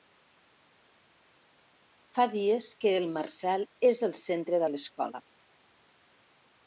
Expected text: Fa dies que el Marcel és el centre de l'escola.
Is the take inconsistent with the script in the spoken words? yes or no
no